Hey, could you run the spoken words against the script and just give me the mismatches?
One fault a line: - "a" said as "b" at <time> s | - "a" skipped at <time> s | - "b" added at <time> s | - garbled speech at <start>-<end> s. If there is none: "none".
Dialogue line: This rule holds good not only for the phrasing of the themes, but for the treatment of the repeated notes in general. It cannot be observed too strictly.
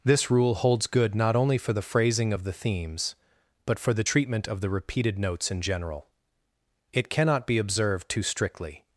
none